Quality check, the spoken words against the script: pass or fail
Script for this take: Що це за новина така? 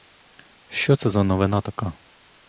pass